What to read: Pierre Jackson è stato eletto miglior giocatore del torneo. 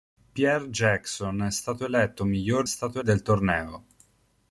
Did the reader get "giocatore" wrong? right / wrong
wrong